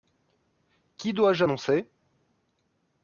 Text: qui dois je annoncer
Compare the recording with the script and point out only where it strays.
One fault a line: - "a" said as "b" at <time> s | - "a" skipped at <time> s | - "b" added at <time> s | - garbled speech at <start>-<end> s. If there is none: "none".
none